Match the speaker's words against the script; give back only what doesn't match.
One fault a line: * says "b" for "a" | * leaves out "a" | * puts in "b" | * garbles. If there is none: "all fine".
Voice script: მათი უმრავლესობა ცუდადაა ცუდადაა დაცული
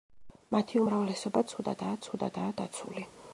all fine